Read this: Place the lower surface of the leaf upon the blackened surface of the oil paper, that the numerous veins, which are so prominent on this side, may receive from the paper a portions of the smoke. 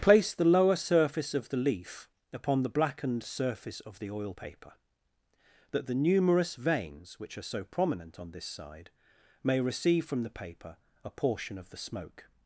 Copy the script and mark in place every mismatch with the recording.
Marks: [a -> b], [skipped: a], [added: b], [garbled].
Place the lower surface of the leaf upon the blackened surface of the oil paper, that the numerous veins, which are so prominent on this side, may receive from the paper a [portions -> portion] of the smoke.